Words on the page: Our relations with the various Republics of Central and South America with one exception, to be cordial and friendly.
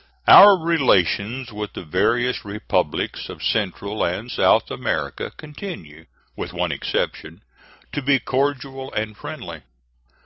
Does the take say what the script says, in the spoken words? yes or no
no